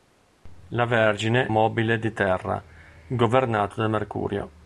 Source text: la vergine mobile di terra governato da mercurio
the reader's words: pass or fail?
pass